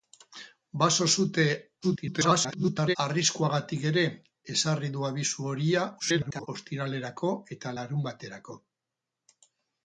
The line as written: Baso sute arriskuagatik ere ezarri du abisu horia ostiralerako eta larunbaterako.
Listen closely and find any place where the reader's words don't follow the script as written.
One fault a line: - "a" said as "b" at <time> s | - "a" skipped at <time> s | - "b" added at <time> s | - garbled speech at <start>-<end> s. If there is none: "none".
- garbled speech at 1.8-3.0 s
- garbled speech at 6.0-6.5 s